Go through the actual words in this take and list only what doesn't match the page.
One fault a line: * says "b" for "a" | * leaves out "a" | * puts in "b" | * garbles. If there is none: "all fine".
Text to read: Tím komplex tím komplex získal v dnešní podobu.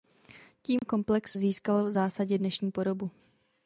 * leaves out "tím komplex"
* puts in "zásadě"